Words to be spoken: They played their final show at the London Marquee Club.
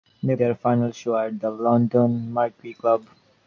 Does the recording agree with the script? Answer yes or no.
no